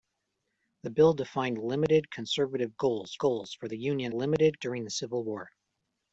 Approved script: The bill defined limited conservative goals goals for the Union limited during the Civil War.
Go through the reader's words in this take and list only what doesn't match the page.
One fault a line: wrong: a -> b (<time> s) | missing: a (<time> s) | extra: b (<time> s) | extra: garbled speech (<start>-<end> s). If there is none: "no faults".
no faults